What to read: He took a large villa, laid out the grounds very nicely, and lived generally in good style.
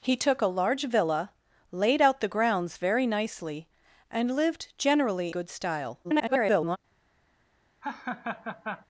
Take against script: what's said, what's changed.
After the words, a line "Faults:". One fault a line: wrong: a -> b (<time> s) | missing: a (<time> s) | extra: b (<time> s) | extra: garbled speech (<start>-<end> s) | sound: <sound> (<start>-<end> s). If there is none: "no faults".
He took a large villa, laid out the grounds very nicely, and lived generally good style. [garbled]
Faults:
missing: in (5.3 s)
extra: garbled speech (6.0-6.8 s)
sound: laugh (7.8-8.9 s)